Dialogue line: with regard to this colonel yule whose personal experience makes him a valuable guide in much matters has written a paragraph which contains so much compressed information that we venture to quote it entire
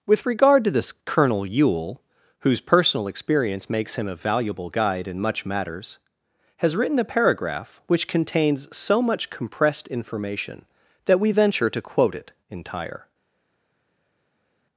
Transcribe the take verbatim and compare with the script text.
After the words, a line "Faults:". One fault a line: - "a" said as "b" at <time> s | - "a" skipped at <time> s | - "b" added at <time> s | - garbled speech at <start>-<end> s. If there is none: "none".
with regard to this colonel yule whose personal experience makes him a valuable guide in much matters has written a paragraph which contains so much compressed information that we venture to quote it entire
Faults:
none